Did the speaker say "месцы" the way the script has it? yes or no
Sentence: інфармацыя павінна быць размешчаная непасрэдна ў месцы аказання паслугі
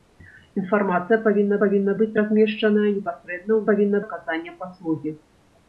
no